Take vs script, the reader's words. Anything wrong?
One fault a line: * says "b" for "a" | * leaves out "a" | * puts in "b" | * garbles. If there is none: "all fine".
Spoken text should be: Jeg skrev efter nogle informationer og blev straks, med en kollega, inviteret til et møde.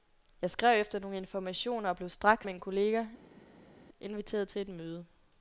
all fine